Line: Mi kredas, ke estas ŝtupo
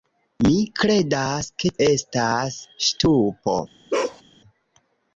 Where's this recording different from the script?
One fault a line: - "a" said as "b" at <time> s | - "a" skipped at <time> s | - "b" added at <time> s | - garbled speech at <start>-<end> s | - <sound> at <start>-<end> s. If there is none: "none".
- bark at 3.9-4.2 s